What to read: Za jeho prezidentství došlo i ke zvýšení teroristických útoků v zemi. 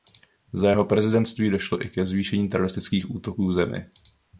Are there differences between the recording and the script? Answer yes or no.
no